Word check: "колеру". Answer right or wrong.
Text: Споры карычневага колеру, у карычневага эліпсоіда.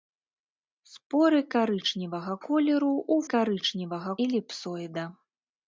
right